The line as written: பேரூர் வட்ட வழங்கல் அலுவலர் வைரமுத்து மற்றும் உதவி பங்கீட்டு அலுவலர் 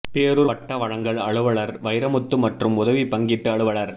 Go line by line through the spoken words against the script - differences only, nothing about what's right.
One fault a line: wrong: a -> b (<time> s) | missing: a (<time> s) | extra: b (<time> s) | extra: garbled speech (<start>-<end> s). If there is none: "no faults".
no faults